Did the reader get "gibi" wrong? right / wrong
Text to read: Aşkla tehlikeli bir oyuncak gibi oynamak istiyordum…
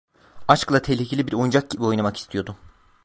right